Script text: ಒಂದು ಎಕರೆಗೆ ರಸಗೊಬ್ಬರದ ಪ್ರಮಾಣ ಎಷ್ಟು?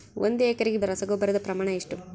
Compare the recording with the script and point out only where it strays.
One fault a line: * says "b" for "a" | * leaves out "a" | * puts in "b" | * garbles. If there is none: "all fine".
all fine